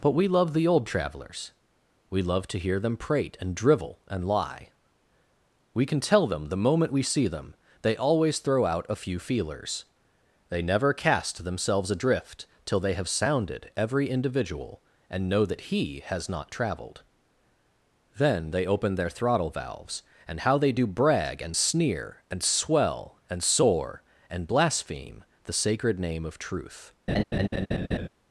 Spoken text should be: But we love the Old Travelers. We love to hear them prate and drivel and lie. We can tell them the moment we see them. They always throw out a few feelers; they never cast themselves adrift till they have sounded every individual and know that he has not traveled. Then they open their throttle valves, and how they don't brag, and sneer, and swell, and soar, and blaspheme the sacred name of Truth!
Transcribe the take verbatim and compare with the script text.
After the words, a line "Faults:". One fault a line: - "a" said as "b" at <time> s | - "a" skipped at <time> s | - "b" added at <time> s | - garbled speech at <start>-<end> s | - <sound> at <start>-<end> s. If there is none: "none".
But we love the Old Travelers. We love to hear them prate and drivel and lie. We can tell them the moment we see them. They always throw out a few feelers; they never cast themselves adrift till they have sounded every individual and know that he has not traveled. Then they open their throttle valves, and how they do brag, and sneer, and swell, and soar, and blaspheme the sacred name of Truth!
Faults:
- "don't" said as "do" at 20.7 s
- laugh at 27.1-28.1 s